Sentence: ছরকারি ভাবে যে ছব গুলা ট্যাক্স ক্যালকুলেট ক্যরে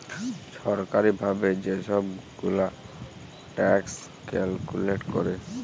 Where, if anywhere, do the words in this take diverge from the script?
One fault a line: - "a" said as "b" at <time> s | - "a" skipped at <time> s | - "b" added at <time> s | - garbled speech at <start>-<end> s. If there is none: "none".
none